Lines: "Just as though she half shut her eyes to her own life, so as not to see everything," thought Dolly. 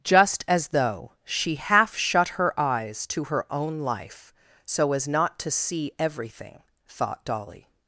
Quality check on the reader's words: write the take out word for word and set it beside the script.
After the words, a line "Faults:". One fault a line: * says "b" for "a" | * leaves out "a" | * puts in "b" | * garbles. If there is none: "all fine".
"Just as though she half shut her eyes to her own life, so as not to see everything," thought Dolly.
Faults:
all fine